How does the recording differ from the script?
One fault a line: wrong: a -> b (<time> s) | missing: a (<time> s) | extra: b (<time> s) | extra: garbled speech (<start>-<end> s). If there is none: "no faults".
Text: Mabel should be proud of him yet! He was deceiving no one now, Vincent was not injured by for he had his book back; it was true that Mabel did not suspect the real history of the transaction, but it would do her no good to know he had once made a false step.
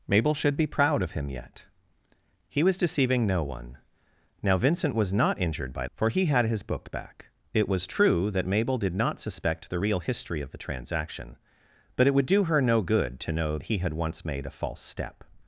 no faults